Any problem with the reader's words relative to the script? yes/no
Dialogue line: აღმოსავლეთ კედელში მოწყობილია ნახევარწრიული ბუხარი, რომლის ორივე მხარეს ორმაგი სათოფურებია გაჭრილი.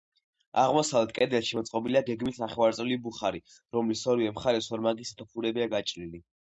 yes